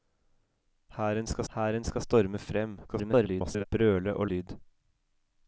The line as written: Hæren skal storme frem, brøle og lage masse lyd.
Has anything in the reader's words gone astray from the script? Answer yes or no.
yes